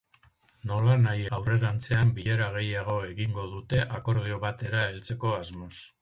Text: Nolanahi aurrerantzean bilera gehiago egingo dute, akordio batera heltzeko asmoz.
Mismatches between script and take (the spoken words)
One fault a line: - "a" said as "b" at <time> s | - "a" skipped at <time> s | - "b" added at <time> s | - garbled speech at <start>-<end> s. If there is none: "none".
none